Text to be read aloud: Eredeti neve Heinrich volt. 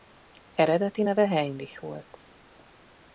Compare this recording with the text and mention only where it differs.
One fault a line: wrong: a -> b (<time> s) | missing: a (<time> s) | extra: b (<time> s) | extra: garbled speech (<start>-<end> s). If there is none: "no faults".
no faults